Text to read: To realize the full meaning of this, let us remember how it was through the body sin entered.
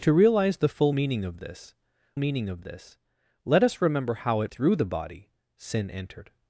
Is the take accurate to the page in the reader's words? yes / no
no